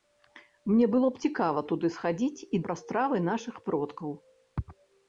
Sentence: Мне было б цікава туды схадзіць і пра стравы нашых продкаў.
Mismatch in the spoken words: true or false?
false